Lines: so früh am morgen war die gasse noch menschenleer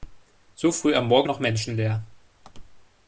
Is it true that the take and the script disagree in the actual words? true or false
true